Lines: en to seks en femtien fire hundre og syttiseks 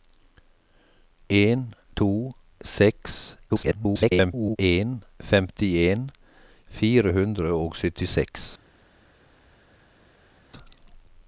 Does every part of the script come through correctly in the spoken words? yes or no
no